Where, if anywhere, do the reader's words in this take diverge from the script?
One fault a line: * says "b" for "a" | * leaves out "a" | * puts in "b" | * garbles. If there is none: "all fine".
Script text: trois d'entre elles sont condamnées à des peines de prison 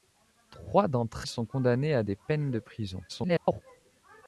* leaves out "elles"
* garbles